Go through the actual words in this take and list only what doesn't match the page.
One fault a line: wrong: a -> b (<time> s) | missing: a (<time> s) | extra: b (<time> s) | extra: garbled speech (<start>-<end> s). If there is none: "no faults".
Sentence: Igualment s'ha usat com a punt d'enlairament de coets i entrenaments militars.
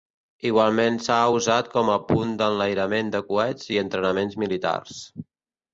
no faults